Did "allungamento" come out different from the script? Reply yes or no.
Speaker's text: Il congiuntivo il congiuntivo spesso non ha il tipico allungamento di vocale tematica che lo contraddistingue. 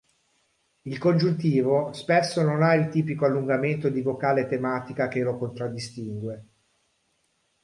no